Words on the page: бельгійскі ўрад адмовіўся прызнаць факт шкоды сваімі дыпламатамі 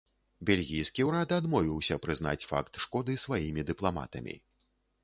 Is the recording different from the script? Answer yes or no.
no